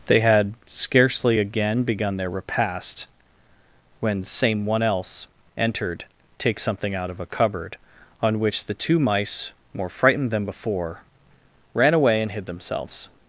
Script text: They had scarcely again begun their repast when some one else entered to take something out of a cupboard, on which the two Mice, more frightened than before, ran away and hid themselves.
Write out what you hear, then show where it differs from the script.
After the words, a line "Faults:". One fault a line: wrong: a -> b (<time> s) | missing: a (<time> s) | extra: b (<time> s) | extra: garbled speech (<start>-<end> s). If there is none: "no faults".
They had scarcely again begun their repast when same one else entered take something out of a cupboard, on which the two Mice, more frightened than before, ran away and hid themselves.
Faults:
wrong: some -> same (4.2 s)
missing: to (6.1 s)